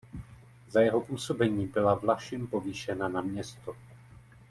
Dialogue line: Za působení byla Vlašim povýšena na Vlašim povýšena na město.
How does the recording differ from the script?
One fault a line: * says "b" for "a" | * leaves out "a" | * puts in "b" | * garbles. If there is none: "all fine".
* puts in "jeho"
* leaves out "Vlašim povýšena na"